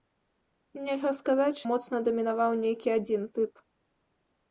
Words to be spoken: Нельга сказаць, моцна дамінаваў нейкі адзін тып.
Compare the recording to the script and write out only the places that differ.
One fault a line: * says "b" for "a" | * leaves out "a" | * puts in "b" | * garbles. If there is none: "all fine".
all fine